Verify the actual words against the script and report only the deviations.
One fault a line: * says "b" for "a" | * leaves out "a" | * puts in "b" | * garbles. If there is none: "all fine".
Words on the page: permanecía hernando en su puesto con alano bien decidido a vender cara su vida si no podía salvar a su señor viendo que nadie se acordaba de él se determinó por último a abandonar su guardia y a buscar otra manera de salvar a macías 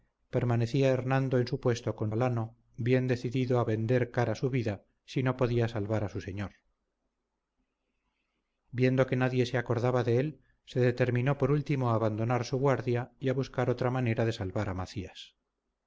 all fine